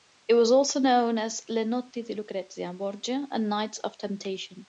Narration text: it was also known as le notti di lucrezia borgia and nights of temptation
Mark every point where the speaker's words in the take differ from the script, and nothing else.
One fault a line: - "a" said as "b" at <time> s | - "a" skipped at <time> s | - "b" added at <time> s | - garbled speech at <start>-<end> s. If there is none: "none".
none